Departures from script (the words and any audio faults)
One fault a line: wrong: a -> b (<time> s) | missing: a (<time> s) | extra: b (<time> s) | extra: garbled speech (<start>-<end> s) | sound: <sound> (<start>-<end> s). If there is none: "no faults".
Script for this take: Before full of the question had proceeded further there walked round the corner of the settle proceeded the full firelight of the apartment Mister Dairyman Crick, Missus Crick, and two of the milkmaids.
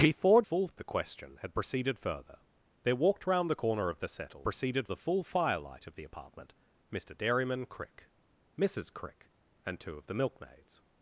no faults